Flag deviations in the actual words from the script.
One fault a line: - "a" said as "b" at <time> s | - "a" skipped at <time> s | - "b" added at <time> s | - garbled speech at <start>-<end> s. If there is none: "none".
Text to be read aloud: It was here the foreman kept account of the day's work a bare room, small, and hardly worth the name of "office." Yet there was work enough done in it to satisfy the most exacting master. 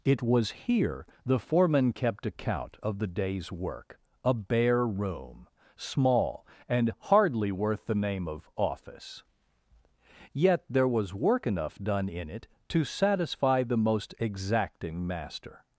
none